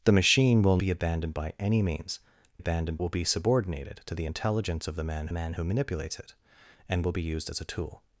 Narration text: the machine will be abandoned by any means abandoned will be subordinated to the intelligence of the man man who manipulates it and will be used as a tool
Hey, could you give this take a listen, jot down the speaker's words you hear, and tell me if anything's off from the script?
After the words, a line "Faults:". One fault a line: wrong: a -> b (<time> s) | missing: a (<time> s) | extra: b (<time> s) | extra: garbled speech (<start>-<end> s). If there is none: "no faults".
the machine will be abandoned by any means abandoned will be subordinated to the intelligence of the man man who manipulates it and will be used as a tool
Faults:
no faults